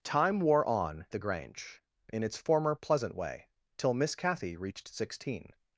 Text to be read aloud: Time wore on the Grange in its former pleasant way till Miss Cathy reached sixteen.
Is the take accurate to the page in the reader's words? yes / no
yes